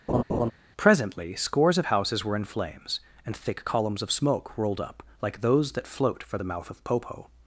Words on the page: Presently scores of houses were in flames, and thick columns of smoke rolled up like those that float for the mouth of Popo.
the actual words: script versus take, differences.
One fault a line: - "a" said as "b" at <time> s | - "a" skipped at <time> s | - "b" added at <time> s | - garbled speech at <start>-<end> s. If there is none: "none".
none